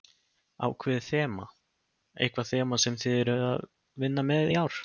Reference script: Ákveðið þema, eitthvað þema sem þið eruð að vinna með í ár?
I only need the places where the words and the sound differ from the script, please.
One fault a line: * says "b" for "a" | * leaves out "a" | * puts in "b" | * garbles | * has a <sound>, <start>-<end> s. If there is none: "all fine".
all fine